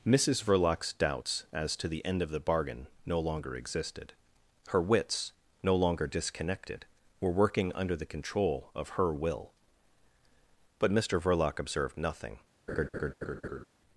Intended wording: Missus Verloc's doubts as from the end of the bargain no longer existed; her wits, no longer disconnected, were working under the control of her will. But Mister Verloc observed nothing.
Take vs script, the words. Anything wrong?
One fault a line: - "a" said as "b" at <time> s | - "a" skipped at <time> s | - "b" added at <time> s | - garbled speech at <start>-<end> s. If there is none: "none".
- "from" said as "to" at 1.8 s